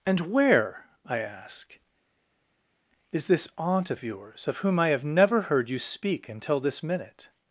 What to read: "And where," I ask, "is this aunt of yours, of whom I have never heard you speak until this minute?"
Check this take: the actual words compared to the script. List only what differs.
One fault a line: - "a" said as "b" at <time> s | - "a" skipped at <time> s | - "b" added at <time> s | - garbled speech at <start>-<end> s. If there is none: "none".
none